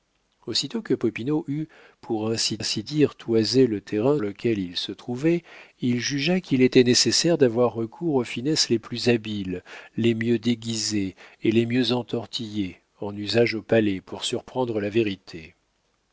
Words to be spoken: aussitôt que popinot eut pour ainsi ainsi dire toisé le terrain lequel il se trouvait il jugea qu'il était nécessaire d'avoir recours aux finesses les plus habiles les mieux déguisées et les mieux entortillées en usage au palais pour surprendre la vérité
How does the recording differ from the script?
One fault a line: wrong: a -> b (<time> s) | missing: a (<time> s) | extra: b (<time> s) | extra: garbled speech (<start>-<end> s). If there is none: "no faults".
no faults